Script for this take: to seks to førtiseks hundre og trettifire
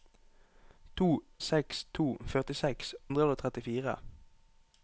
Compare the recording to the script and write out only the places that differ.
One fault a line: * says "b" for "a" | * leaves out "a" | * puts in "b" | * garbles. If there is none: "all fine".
all fine